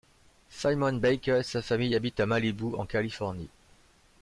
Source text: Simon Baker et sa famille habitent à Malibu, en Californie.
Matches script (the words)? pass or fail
pass